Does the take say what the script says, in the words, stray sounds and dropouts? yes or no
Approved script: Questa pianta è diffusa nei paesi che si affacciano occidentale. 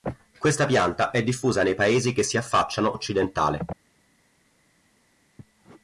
yes